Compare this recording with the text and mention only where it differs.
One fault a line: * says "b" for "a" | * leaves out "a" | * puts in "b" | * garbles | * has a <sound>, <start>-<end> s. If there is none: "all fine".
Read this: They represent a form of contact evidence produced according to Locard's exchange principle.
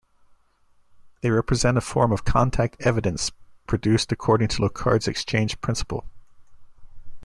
all fine